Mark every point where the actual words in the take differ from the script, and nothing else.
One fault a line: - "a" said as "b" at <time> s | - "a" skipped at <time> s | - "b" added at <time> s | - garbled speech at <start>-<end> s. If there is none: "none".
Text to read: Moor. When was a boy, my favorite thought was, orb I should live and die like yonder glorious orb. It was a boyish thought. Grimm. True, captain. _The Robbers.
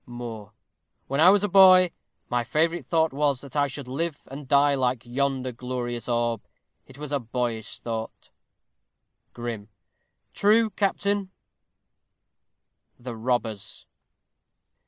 - "I" added at 1.2 s
- "orb" said as "that" at 3.4 s